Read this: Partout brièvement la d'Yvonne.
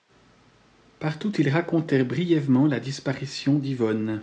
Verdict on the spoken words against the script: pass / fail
fail